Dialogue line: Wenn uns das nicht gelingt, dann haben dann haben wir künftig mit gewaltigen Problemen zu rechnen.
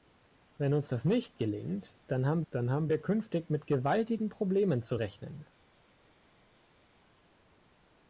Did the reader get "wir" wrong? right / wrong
right